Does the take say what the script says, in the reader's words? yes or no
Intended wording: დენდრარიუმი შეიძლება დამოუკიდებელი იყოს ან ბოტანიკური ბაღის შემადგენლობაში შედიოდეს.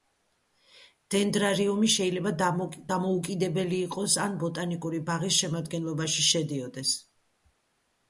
yes